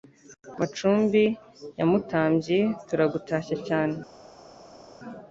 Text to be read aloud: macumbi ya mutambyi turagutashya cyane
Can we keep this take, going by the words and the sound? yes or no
yes